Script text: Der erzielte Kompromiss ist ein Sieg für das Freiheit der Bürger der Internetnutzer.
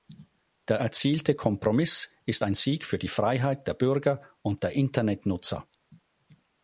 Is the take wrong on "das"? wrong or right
wrong